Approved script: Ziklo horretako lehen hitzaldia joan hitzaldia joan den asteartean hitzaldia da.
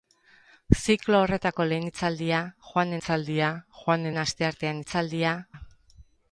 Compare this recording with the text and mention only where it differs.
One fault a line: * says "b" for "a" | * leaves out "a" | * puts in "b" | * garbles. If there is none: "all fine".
all fine